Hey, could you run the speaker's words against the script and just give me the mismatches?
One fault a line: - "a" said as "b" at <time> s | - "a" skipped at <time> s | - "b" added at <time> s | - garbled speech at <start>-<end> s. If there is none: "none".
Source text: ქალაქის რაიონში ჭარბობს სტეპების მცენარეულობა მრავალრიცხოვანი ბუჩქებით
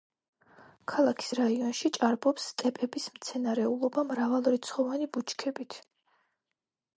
none